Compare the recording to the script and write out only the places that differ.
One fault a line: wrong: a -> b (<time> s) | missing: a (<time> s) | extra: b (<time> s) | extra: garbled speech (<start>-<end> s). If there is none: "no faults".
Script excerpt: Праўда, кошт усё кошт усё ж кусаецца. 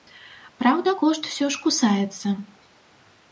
missing: кошт усё (1.5 s)